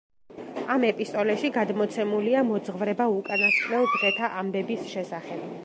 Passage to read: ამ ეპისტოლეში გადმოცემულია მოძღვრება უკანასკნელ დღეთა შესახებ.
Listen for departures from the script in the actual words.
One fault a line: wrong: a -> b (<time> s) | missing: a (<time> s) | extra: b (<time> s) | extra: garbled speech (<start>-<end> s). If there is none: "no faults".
extra: ამბების (4.4 s)